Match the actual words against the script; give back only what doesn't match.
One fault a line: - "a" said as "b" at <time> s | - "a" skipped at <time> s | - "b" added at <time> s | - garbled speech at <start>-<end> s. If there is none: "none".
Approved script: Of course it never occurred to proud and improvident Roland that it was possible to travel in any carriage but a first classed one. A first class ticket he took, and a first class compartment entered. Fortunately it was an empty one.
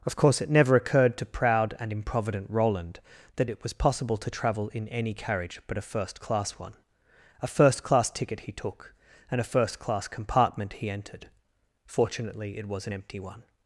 - "classed" said as "class" at 6.2 s
- "he" added at 10.7 s